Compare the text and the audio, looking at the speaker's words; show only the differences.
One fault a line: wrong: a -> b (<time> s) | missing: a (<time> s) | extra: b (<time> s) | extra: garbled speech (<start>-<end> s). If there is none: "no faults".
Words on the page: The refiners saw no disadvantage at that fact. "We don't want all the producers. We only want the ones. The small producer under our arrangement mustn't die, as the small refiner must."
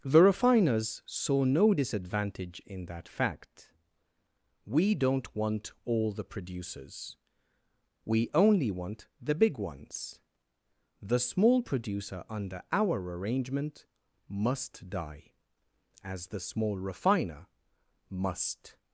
wrong: at -> in (2.6 s)
extra: big (9.3 s)
wrong: mustn't -> must (14.3 s)